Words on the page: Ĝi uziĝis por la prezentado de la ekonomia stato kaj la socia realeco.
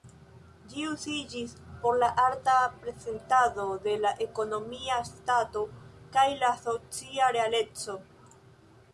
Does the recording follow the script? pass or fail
fail